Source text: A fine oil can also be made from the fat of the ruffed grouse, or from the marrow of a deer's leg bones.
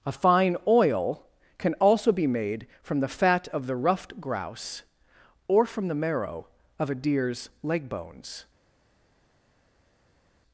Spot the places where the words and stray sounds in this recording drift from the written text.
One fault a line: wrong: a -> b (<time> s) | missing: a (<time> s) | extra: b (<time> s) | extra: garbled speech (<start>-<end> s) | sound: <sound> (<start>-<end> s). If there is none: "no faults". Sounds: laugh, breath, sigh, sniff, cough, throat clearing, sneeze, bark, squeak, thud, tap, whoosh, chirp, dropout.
no faults